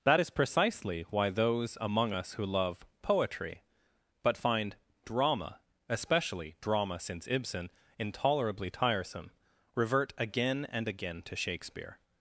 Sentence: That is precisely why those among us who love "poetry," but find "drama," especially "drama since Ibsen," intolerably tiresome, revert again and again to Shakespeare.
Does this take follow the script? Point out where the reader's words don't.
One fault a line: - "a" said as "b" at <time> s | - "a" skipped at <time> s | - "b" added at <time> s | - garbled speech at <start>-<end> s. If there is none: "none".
none